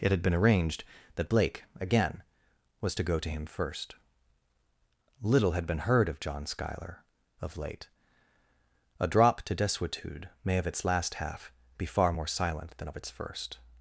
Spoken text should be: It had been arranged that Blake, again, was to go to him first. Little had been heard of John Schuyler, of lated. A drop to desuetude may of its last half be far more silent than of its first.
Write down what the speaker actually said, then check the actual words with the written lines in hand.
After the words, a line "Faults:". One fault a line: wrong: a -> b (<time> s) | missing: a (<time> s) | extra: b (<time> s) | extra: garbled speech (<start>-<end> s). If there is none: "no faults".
It had been arranged that Blake, again, was to go to him first. Little had been heard of John Schuyler, of late. A drop to desuetude may of its last half be far more silent than of its first.
Faults:
wrong: lated -> late (7.6 s)